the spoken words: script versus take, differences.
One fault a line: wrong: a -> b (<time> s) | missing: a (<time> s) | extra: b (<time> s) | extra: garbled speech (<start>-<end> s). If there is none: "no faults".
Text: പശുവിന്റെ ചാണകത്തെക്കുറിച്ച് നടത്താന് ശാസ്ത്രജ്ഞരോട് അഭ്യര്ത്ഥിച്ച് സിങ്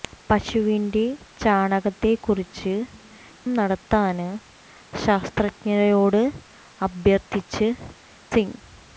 no faults